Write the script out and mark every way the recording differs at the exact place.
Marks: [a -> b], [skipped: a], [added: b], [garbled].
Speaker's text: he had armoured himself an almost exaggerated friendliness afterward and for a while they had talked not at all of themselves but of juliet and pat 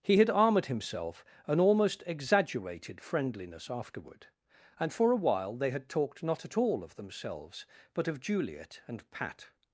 he had armoured himself an almost exaggerated friendliness afterward and for a while they had talked not at all of themselves but of juliet and pat